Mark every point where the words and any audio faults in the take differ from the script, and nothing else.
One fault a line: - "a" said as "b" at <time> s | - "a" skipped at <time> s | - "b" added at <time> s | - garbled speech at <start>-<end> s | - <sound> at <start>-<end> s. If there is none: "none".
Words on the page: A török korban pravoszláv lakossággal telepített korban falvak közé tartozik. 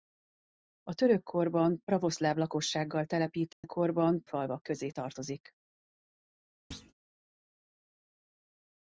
- dropout at 3.5-3.6 s
- thud at 6.7-6.9 s